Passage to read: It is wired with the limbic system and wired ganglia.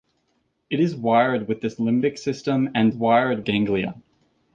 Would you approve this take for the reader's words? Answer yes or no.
yes